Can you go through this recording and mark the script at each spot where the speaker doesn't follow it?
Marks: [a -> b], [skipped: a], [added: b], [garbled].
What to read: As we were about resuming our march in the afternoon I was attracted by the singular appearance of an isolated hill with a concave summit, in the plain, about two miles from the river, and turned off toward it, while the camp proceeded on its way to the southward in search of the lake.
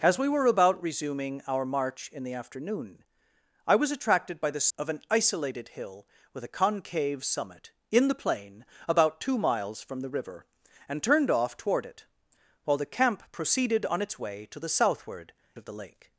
As we were about resuming our march in the afternoon I was attracted by the [skipped: singular appearance] of an isolated hill with a concave summit, in the plain, about two miles from the river, and turned off toward it, while the camp proceeded on its way to the southward [skipped: in search] of the lake.